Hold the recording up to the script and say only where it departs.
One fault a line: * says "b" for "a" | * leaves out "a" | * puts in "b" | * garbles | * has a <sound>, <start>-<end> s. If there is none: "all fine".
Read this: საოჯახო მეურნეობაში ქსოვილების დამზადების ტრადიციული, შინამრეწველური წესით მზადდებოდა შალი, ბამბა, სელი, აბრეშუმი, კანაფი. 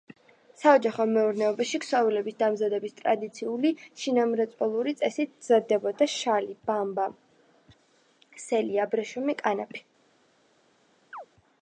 * has a chirp, 11.1-11.3 s